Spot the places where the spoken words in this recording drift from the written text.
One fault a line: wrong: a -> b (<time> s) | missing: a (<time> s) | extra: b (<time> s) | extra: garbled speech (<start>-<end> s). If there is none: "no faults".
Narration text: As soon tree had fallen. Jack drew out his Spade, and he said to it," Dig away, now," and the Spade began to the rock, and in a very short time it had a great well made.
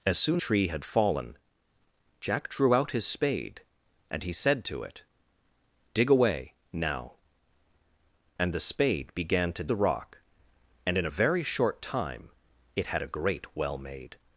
no faults